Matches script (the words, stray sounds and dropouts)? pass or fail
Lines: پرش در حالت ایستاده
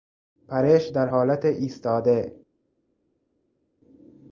pass